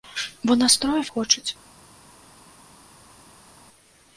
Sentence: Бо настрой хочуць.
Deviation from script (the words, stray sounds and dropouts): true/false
false